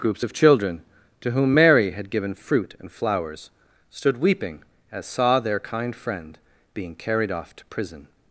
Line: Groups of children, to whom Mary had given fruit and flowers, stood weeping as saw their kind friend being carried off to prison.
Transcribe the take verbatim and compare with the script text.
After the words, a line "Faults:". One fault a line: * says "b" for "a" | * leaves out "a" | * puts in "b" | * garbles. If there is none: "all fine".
Groups of children, to whom Mary had given fruit and flowers, stood weeping as saw their kind friend being carried off to prison.
Faults:
all fine